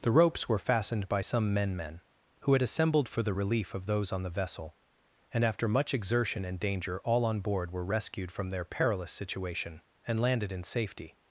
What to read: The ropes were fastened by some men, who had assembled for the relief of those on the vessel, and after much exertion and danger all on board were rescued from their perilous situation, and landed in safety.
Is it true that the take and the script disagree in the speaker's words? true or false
true